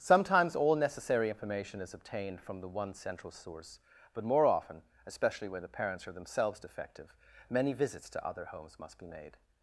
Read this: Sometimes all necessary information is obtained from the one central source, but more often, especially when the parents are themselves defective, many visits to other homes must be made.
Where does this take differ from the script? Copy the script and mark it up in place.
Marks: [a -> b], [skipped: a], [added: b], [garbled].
Sometimes all necessary information is obtained from the one central source, but more often, especially when the parents are themselves defective, many visits to other homes must be made.